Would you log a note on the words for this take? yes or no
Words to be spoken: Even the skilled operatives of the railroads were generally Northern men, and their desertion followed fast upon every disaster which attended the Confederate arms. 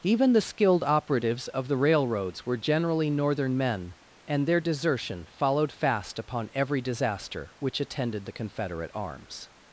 no